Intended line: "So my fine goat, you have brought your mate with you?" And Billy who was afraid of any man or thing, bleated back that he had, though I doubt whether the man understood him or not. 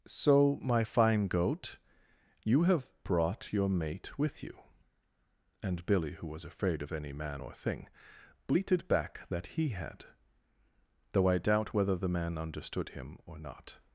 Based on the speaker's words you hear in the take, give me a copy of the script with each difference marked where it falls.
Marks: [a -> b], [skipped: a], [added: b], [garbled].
"So my fine goat, you have brought your mate with you?" And Billy who was afraid of any man or thing, bleated back that he had, though I doubt whether the man understood him or not.